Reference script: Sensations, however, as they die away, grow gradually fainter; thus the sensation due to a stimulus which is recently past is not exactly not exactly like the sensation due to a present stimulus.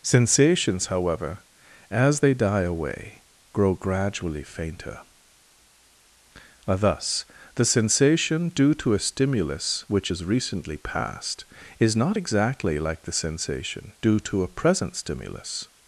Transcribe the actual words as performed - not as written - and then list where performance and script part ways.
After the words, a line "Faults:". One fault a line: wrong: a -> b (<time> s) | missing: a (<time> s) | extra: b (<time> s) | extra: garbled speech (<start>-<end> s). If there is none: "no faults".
Sensations, however, as they die away, grow gradually fainter; thus the sensation due to a stimulus which is recently past is not exactly like the sensation due to a present stimulus.
Faults:
missing: not exactly (12.8 s)